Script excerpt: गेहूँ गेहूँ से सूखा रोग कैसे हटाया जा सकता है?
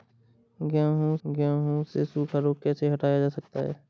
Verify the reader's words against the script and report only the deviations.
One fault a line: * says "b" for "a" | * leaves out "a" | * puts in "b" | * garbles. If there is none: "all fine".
all fine